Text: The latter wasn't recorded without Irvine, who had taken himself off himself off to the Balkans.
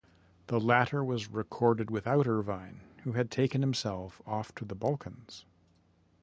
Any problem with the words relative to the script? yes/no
yes